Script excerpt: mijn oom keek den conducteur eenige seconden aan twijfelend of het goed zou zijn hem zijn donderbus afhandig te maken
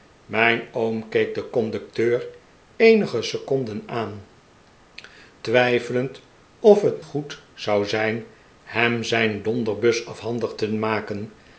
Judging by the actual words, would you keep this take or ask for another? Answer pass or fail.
pass